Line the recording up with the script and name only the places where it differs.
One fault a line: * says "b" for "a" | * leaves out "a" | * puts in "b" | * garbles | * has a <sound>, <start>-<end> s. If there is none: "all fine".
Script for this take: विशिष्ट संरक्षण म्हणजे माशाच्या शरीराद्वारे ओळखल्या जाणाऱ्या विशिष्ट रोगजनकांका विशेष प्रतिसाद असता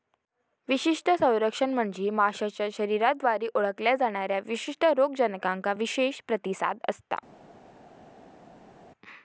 all fine